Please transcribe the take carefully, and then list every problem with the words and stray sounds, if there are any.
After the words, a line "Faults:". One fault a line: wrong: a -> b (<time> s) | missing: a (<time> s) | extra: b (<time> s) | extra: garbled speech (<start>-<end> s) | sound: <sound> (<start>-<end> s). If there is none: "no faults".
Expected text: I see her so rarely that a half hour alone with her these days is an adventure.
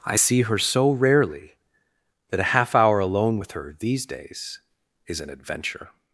I see her so rarely that a half hour alone with her these days is an adventure.
Faults:
no faults